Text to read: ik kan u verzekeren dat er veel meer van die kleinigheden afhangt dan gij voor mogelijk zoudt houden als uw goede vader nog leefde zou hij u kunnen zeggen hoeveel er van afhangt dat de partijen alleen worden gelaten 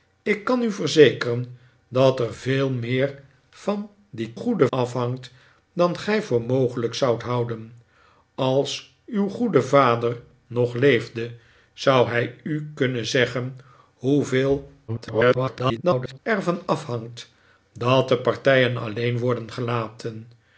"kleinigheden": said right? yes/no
no